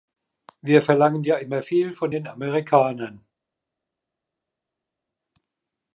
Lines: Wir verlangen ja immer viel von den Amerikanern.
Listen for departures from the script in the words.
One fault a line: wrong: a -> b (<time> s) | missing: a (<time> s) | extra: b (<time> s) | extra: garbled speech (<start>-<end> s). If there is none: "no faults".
no faults